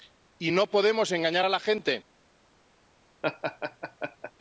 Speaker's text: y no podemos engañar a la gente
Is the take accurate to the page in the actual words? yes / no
yes